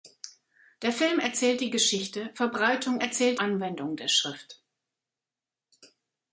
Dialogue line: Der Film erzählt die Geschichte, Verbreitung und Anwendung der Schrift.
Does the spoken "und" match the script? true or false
false